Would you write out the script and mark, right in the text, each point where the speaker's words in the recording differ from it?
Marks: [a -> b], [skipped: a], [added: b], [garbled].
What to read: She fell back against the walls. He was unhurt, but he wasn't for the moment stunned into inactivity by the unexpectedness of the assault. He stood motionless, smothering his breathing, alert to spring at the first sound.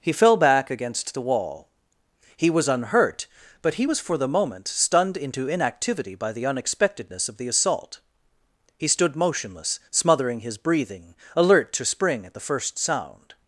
[She -> He] fell back against the [walls. -> wall] He was unhurt, but he [wasn't -> was] for the moment stunned into inactivity by the unexpectedness of the assault. He stood motionless, smothering his breathing, alert to spring at the first sound.